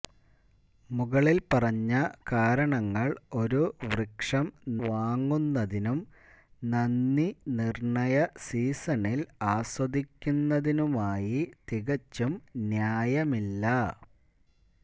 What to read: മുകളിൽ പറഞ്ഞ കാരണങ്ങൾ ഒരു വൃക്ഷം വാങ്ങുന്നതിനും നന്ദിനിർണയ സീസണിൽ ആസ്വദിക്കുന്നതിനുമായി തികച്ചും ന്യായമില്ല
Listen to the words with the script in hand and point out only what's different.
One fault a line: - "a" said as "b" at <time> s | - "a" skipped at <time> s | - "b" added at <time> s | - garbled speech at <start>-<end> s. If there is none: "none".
none